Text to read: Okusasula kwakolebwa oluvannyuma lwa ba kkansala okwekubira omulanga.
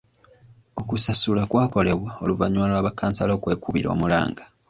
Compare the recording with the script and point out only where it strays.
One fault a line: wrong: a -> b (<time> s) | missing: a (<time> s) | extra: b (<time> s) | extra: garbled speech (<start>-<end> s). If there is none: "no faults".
no faults